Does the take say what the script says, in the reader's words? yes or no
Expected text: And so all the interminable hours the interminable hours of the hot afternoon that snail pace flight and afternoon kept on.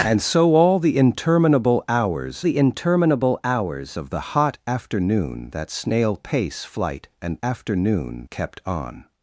yes